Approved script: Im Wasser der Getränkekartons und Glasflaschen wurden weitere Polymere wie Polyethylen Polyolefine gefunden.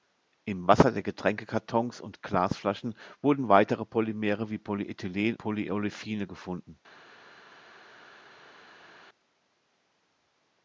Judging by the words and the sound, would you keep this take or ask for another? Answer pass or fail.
pass